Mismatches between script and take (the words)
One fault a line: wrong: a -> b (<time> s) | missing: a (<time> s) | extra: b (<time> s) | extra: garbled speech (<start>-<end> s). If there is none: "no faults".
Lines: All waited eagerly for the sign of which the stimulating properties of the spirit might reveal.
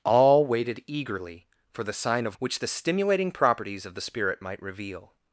no faults